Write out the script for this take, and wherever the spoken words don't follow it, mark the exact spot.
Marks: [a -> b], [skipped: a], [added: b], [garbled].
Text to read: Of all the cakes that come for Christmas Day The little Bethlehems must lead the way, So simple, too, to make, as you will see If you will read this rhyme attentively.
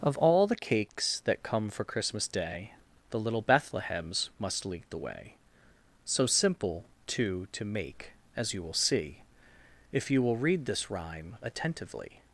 Of all the cakes that come for Christmas Day The little Bethlehems must lead the way, So simple, too, to make, as you will see If you will read this rhyme attentively.